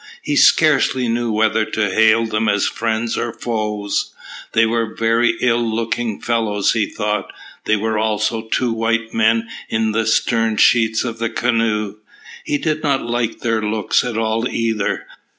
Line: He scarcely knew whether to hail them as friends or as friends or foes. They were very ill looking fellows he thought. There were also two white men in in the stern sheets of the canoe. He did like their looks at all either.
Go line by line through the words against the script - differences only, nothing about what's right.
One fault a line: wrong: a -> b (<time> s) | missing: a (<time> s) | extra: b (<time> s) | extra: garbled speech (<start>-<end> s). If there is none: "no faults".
missing: as friends or (3.3 s)
missing: in (9.9 s)
extra: not (12.8 s)